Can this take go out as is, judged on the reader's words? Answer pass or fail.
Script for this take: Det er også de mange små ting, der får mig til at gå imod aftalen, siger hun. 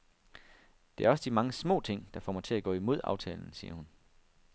pass